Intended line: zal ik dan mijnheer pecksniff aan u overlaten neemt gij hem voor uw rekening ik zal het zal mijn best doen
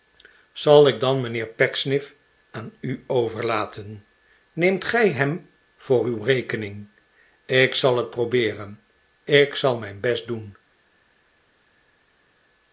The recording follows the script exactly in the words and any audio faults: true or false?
false